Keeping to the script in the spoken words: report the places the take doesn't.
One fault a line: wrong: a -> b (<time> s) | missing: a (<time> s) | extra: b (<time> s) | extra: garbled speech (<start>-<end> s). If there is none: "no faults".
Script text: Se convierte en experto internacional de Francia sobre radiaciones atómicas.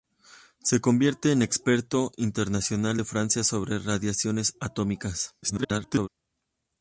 extra: garbled speech (5.4-6.1 s)